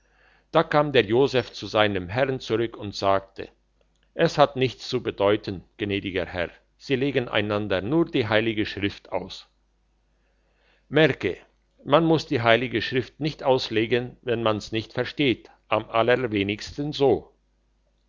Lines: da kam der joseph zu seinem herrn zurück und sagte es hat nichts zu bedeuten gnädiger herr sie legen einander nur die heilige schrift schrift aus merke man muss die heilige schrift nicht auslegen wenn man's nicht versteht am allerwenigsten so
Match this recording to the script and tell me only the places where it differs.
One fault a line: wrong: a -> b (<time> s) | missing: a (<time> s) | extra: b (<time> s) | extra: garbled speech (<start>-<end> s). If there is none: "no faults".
missing: schrift (9.1 s)